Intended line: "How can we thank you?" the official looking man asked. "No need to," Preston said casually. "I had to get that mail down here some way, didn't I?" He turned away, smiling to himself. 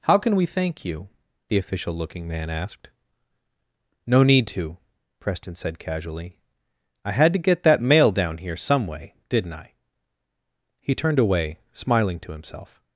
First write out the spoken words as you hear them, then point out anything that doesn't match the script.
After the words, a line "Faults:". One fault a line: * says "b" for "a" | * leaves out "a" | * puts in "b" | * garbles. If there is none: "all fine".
"How can we thank you?" the official looking man asked. "No need to," Preston said casually. "I had to get that mail down here some way, didn't I?" He turned away, smiling to himself.
Faults:
all fine